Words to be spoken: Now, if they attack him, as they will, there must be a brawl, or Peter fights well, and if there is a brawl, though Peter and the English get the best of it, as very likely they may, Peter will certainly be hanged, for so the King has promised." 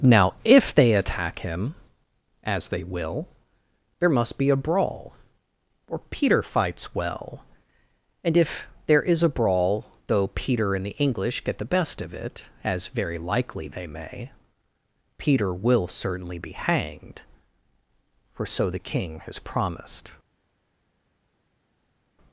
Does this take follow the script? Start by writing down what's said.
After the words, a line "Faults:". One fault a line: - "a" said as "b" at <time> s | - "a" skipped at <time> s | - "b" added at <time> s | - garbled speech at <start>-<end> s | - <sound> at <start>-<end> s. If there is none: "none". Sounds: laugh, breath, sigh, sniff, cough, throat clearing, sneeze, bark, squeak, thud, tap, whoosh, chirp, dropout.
Now, if they attack him, as they will, there must be a brawl, or Peter fights well, and if there is a brawl, though Peter and the English get the best of it, as very likely they may, Peter will certainly be hanged, for so the King has promised."
Faults:
none